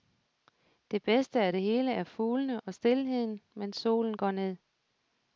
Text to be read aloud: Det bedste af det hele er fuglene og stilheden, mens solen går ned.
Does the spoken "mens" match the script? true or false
true